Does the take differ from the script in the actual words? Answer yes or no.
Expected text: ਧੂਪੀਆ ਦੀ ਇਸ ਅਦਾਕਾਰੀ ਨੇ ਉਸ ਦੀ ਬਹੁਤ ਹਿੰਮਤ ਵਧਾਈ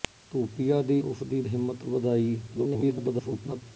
yes